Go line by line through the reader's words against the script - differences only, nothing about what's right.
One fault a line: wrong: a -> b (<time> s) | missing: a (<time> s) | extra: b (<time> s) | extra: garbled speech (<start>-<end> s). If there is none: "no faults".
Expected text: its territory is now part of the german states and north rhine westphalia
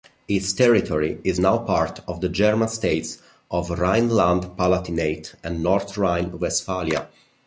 extra: of rhineland palatinate (3.5 s)